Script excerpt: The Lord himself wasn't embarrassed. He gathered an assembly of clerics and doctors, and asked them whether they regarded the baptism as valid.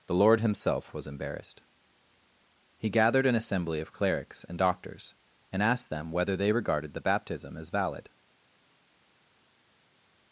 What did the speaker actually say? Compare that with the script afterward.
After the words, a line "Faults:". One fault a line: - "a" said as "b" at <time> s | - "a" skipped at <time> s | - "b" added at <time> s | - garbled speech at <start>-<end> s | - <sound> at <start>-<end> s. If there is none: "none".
The Lord himself was embarrassed. He gathered an assembly of clerics and doctors, and asked them whether they regarded the baptism as valid.
Faults:
- "wasn't" said as "was" at 0.9 s